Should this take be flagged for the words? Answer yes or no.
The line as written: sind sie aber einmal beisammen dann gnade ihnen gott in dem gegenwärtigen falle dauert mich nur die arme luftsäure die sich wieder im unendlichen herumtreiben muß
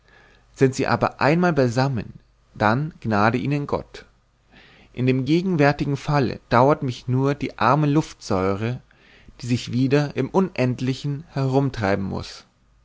no